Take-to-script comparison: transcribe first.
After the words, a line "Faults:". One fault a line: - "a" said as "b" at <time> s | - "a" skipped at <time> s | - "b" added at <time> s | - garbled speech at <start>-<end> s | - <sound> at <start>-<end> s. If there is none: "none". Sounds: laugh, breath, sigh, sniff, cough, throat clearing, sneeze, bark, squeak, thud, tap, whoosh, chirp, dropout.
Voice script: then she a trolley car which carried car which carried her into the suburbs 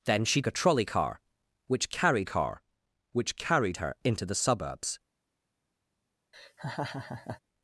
then she a trolley car which carried car which carried her into the suburbs
Faults:
- laugh at 6.3-7.4 s